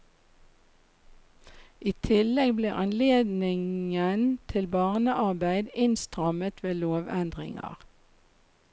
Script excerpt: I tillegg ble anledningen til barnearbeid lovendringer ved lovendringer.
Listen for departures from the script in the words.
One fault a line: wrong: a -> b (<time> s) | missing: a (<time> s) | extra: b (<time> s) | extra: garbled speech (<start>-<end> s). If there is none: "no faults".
wrong: lovendringer -> innstrammet (5.9 s)